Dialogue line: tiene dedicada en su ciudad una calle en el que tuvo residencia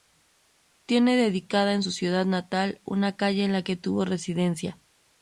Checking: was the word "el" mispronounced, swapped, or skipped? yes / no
yes